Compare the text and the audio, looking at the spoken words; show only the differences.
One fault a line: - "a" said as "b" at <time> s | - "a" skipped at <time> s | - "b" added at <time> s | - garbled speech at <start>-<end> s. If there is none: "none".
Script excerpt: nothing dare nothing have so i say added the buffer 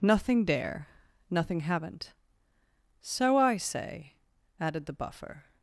- "have" said as "haven't" at 1.6 s